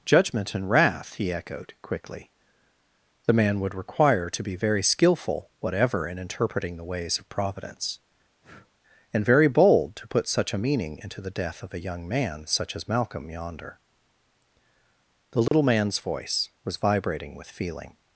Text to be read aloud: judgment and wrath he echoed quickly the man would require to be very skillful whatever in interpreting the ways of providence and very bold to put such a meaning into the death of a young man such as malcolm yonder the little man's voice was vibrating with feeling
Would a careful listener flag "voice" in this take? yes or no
no